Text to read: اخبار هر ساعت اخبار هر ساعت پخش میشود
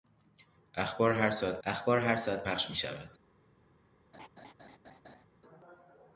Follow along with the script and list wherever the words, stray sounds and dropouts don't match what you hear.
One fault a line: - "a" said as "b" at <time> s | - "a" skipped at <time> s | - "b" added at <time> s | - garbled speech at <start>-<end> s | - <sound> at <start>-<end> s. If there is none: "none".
- laugh at 4.1-5.3 s